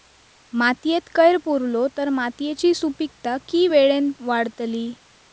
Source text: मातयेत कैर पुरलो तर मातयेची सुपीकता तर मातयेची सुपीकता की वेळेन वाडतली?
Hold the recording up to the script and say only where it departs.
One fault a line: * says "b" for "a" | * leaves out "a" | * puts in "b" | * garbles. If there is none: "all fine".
* leaves out "तर मातयेची सुपीकता"